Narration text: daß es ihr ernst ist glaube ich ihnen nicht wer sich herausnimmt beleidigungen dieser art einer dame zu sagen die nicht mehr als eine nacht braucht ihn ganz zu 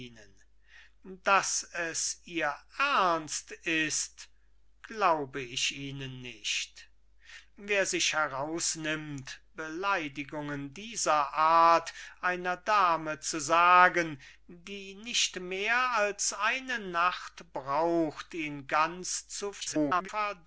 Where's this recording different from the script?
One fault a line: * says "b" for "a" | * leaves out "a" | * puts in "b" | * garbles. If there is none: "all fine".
* garbles